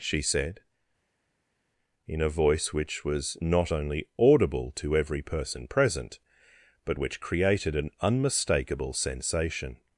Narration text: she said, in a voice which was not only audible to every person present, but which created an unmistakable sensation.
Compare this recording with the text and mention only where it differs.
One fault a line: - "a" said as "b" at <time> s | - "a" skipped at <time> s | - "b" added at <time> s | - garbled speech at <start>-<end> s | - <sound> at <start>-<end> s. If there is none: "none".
none